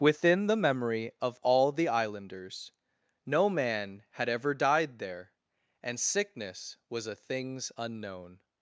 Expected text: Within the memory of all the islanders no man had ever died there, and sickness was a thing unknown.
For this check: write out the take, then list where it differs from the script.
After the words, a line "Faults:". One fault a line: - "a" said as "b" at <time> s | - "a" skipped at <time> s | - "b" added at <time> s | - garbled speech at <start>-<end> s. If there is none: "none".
Within the memory of all the islanders no man had ever died there, and sickness was a things unknown.
Faults:
- "thing" said as "things" at 7.1 s